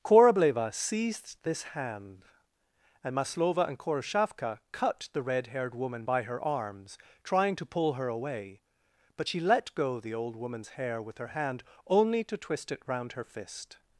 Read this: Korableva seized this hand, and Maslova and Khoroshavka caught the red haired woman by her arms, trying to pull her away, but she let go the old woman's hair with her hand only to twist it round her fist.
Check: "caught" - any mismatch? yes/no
yes